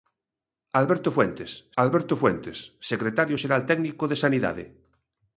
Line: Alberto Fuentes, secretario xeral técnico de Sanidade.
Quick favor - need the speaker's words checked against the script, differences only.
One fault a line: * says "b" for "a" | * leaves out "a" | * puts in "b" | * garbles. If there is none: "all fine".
* puts in "alberto Fuentes"